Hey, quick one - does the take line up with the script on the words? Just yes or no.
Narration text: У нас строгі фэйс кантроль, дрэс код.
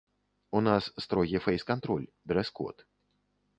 yes